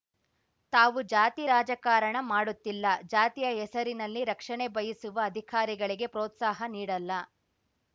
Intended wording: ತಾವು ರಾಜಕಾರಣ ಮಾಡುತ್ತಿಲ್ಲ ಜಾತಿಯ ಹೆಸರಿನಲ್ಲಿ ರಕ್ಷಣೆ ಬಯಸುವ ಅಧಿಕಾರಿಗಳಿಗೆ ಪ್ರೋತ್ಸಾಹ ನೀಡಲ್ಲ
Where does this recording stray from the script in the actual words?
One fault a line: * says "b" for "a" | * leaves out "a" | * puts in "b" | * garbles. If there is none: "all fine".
* puts in "ಜಾತಿ"